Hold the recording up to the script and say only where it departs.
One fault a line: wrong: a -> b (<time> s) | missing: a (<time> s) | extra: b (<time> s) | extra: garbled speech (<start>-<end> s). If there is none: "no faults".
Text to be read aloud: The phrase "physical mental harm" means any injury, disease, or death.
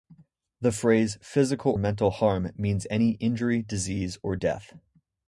no faults